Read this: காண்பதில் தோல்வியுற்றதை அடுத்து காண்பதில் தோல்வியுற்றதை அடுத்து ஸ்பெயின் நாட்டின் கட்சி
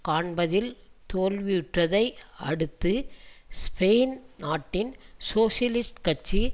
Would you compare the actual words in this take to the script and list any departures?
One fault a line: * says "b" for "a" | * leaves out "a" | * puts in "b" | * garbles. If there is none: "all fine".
* leaves out "காண்பதில் தோல்வியுற்றதை அடுத்து"
* puts in "சோசியலிஸ்ட்"